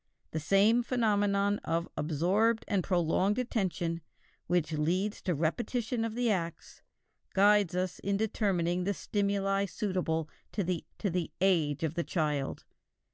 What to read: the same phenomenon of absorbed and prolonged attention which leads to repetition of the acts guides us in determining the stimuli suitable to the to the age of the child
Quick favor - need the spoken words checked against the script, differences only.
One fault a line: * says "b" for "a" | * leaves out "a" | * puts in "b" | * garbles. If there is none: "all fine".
all fine